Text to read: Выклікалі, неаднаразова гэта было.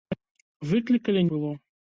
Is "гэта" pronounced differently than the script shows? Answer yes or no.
yes